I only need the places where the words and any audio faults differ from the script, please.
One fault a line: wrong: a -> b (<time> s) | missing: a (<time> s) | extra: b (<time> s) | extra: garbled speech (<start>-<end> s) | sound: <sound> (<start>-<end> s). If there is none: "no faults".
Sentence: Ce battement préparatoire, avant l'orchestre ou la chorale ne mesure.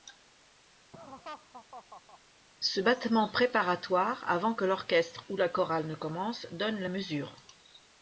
sound: laugh (0.9-2.2 s)
extra: que (4.5 s)
extra: commence donne la (5.9 s)